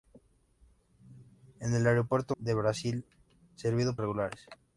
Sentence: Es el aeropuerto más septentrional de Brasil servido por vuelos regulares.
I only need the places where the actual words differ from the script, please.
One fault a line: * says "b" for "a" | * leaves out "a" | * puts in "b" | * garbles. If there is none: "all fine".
* leaves out "más septentrional"
* leaves out "por vuelos"